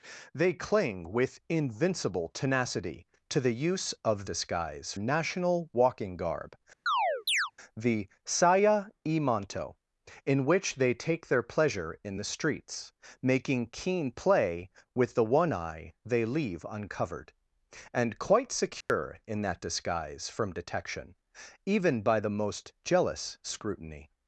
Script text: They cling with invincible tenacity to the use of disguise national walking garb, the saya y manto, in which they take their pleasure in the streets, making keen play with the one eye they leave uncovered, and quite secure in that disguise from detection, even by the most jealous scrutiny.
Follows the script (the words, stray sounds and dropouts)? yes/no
no